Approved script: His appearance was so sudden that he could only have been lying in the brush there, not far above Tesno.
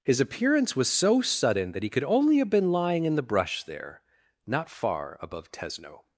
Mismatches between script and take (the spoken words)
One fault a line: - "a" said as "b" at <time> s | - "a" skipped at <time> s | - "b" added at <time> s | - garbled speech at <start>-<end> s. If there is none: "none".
none